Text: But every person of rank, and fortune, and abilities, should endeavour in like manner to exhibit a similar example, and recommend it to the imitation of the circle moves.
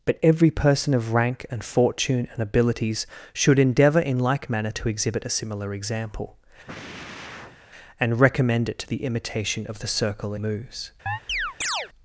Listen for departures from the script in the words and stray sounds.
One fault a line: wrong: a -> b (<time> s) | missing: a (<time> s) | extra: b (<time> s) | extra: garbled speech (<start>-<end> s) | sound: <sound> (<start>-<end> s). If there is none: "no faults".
sound: sigh (6.7-7.6 s)
sound: chirp (11.1-11.9 s)